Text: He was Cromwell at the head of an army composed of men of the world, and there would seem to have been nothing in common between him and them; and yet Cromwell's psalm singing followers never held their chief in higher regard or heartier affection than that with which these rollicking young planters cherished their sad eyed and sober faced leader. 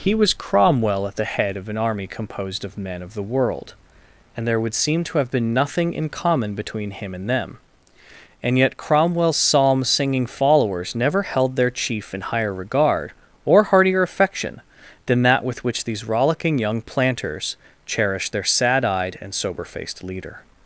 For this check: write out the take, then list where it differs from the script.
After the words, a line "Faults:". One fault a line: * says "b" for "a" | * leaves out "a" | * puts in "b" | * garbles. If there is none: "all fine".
He was Cromwell at the head of an army composed of men of the world, and there would seem to have been nothing in common between him and them; and yet Cromwell's psalm singing followers never held their chief in higher regard or heartier affection than that with which these rollicking young planters cherished their sad eyed and sober faced leader.
Faults:
all fine